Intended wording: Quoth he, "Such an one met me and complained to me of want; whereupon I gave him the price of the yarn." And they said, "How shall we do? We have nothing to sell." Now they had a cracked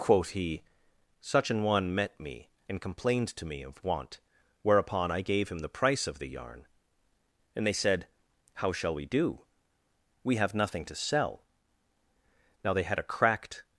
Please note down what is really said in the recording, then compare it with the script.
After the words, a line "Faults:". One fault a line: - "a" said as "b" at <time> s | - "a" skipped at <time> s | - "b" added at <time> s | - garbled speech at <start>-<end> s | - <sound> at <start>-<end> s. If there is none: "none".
Quoth he, "Such an one met me and complained to me of want; whereupon I gave him the price of the yarn." And they said, "How shall we do? We have nothing to sell." Now they had a cracked
Faults:
none